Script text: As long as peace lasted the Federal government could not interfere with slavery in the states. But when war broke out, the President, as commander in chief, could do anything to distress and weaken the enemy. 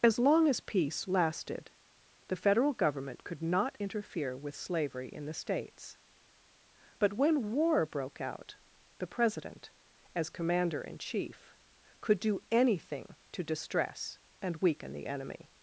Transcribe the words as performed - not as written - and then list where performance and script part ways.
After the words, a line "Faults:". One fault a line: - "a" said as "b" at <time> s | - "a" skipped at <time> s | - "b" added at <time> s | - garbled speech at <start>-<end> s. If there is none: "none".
As long as peace lasted the Federal government could not interfere with slavery in the states. But when war broke out, the President, as commander in chief, could do anything to distress and weaken the enemy.
Faults:
none